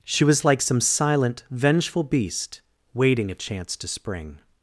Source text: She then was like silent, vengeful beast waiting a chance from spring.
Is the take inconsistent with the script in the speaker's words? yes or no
yes